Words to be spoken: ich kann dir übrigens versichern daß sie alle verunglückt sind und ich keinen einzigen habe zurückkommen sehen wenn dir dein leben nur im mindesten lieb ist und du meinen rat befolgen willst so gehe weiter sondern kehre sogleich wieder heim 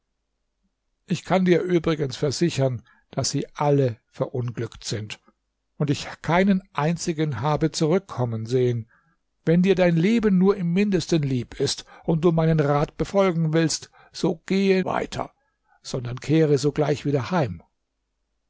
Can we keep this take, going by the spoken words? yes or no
yes